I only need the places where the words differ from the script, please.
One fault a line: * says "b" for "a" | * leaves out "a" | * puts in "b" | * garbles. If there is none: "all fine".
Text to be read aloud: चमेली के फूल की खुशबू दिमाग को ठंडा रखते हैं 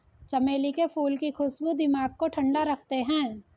all fine